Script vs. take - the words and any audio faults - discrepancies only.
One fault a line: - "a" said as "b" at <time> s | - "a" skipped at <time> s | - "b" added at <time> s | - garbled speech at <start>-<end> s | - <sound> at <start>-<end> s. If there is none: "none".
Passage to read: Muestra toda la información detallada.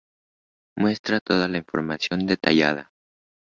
none